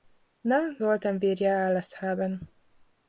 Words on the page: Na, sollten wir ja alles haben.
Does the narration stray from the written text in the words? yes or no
no